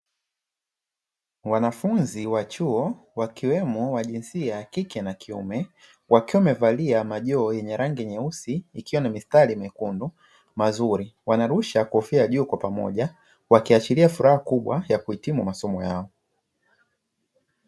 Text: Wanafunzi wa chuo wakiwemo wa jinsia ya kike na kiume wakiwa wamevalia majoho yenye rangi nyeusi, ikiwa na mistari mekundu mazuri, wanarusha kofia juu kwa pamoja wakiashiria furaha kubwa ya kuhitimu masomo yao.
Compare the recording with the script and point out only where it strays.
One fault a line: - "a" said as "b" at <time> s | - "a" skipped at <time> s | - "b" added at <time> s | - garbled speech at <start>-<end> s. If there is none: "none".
none